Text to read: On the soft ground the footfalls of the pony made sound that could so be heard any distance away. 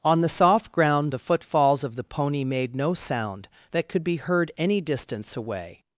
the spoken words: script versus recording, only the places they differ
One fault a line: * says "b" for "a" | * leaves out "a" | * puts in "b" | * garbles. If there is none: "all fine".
* puts in "no"
* leaves out "so"